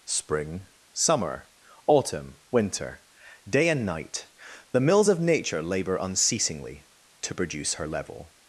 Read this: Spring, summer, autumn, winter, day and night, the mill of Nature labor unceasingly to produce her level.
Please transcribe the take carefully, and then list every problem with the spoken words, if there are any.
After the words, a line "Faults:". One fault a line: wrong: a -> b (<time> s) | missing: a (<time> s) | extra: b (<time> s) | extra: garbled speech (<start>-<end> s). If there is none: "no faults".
Spring, summer, autumn, winter, day and night, the mills of Nature labor unceasingly to produce her level.
Faults:
wrong: mill -> mills (4.8 s)